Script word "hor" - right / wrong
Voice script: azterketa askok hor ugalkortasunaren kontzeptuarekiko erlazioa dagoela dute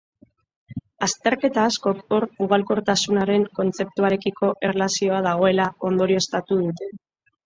right